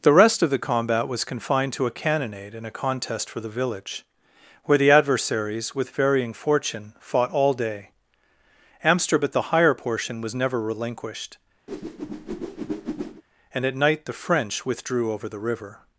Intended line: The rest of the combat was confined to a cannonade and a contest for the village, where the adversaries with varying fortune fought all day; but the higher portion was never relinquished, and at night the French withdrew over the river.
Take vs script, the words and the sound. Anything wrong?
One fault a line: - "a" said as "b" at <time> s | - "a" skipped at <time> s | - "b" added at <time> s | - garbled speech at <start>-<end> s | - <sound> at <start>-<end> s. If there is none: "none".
- "but" said as "amsterdam at" at 8.8 s
- whoosh at 11.7-13.2 s